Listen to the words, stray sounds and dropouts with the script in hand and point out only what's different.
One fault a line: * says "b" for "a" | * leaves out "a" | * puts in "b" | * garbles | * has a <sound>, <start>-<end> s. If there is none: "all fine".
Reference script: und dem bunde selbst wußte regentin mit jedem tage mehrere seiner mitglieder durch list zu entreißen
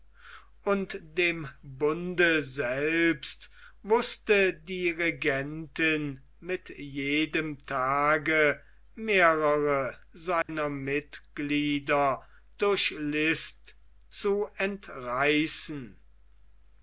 * puts in "die"
* has a dropout, 10.4-10.5 s